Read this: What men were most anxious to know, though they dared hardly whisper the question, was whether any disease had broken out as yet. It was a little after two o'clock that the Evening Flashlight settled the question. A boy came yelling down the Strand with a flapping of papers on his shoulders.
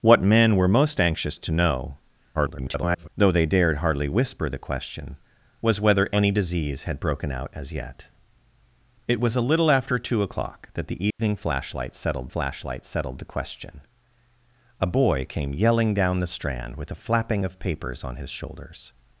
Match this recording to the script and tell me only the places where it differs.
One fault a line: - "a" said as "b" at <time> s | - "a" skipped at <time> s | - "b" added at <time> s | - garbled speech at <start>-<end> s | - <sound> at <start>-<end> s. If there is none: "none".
- garbled speech at 2.3-3.1 s
- dropout at 11.1-11.2 s
- "Flashlight settled" added at 12.3 s